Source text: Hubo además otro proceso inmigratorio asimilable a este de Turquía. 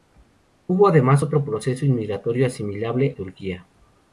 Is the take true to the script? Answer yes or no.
no